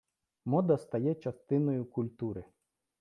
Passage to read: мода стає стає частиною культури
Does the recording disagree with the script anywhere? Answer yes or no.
yes